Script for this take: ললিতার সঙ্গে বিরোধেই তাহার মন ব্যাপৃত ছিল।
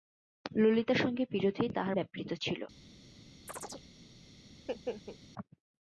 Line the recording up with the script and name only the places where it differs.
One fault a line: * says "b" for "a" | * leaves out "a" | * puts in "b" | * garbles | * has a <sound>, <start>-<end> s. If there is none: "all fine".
* leaves out "মন"
* has a chirp, 3.5-3.9 s
* has a laugh, 4.5-5.2 s